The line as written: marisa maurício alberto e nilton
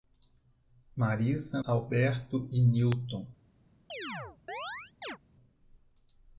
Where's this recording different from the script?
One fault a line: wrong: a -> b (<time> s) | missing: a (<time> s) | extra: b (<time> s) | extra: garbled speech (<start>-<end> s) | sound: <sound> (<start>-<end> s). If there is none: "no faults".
missing: maurício (1.6 s)
sound: chirp (3.9-5.2 s)